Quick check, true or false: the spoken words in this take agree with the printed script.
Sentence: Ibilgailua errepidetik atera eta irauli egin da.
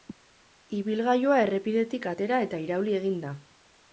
true